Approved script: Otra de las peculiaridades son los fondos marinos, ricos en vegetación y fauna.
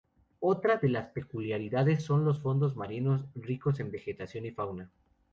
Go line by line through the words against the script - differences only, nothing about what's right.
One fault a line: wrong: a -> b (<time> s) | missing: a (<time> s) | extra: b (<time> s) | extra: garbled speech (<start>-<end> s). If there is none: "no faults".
no faults